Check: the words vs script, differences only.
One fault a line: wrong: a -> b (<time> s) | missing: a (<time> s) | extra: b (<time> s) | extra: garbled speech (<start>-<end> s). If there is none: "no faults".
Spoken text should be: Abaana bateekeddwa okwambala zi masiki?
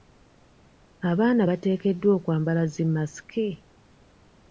no faults